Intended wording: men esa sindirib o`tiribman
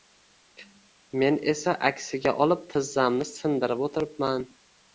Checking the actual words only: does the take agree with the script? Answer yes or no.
no